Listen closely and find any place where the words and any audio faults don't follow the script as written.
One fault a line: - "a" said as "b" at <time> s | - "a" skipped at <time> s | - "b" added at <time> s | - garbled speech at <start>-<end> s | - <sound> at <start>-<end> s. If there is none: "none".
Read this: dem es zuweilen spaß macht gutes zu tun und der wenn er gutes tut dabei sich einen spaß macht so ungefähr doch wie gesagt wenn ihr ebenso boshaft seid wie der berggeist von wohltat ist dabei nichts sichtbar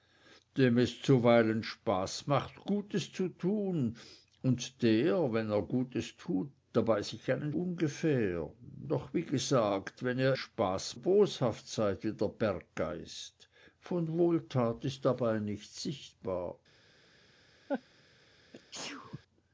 - "spaß macht so" skipped at 7.5 s
- "ebenso" said as "spaß" at 10.3 s
- laugh at 17.7-17.8 s
- sneeze at 18.5-19.2 s